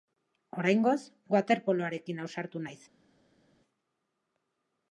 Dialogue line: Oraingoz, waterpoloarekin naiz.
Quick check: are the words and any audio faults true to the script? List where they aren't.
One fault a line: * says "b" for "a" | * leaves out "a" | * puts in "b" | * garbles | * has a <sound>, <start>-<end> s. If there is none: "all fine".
* puts in "ausartu"